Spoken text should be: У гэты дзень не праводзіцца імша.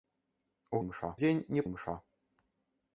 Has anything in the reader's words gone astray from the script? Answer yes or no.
yes